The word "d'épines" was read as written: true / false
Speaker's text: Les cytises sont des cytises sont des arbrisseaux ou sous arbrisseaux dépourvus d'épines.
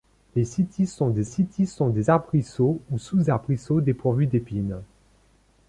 true